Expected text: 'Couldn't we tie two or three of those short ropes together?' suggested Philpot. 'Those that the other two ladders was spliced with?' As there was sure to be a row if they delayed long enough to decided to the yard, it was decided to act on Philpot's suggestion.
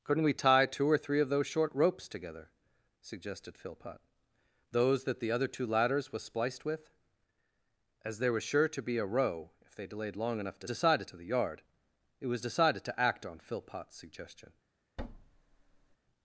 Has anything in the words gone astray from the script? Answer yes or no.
no